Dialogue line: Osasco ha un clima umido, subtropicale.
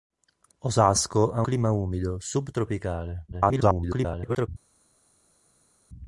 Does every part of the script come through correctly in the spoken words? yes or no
no